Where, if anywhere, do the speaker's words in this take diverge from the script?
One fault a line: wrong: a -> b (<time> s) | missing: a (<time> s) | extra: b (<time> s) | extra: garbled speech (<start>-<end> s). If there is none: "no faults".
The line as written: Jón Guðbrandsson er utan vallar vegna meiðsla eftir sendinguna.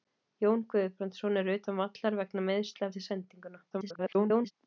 extra: garbled speech (3.7-4.5 s)